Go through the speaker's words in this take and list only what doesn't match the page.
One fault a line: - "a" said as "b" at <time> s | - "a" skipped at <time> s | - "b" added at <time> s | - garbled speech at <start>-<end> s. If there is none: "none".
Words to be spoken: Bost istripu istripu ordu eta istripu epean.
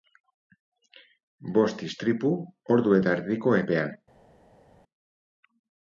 - "istripu" skipped at 2.3 s
- "istripu" said as "erdiko" at 3.2 s